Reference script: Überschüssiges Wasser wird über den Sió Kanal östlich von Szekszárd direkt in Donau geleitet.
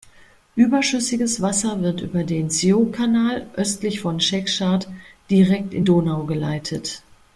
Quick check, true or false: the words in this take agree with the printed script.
true